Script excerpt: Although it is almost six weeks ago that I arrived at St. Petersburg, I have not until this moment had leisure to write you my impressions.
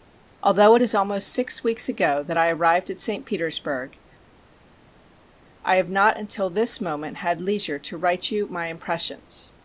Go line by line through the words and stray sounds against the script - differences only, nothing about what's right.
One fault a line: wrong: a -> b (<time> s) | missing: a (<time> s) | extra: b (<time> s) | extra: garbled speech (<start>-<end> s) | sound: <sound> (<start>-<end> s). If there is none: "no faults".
no faults